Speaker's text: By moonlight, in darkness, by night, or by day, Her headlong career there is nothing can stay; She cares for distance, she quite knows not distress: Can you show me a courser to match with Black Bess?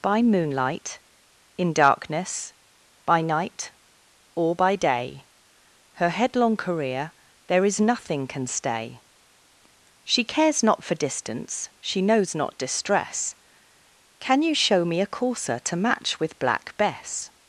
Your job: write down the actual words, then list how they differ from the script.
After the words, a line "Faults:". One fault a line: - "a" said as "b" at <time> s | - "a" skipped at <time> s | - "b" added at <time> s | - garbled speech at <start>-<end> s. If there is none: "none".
By moonlight, in darkness, by night, or by day, Her headlong career there is nothing can stay; She cares not for distance, she knows not distress: Can you show me a courser to match with Black Bess?
Faults:
- "not" added at 10.6 s
- "quite" skipped at 12.0 s